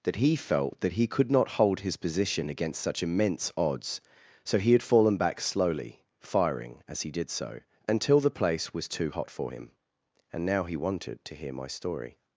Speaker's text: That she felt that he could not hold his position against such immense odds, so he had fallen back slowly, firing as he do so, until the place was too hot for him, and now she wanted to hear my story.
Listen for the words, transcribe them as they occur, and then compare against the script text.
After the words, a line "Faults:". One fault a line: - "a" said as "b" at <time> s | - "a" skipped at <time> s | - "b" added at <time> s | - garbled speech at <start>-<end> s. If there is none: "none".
That he felt that he could not hold his position against such immense odds, so he had fallen back slowly, firing as he did so, until the place was too hot for him, and now he wanted to hear my story.
Faults:
- "she" said as "he" at 0.2 s
- "do" said as "did" at 7.1 s
- "she" said as "he" at 10.6 s